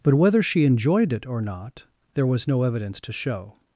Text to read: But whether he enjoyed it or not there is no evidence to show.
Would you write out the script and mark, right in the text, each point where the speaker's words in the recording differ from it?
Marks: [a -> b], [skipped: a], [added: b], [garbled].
But whether [he -> she] enjoyed it or not there [is -> was] no evidence to show.